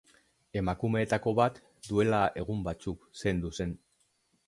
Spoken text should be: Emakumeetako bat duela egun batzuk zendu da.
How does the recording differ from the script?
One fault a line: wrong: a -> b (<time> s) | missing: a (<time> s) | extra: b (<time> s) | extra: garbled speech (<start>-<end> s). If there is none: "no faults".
wrong: da -> zen (3.6 s)